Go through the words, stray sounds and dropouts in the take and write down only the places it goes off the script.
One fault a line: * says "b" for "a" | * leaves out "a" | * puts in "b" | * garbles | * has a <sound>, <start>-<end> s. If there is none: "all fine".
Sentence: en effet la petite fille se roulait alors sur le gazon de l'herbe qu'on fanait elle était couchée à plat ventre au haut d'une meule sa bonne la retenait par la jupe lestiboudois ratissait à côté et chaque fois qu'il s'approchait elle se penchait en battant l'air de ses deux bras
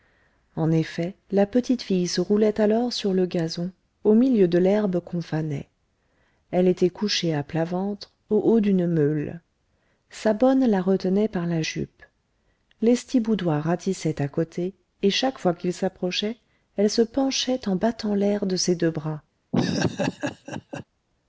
* puts in "au milieu"
* has a laugh, 19.5-20.8 s